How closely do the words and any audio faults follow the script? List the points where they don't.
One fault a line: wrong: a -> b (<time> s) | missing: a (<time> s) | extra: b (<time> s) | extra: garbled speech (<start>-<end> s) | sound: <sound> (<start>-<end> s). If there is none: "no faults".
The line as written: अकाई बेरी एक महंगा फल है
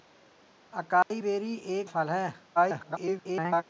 sound: dropout (1.0-1.1 s)
missing: महंगा (1.9 s)
extra: garbled speech (2.6-3.6 s)